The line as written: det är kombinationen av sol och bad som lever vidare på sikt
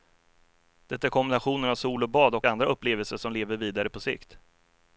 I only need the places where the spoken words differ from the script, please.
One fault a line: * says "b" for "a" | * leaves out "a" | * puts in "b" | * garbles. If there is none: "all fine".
* puts in "och andra upplevelser"